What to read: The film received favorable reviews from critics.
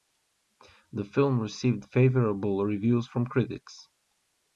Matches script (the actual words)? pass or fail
pass